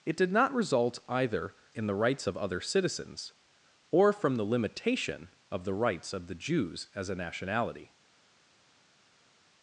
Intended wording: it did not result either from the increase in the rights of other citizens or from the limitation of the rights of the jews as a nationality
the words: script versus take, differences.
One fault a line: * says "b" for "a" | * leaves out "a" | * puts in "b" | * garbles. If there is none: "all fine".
* leaves out "from the increase"